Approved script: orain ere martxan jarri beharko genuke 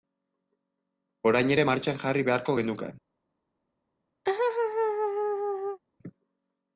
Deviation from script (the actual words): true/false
false